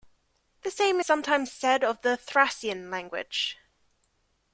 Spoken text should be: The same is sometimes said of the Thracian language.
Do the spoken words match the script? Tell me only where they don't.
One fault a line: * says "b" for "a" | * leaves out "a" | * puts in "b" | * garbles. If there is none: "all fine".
* leaves out "is"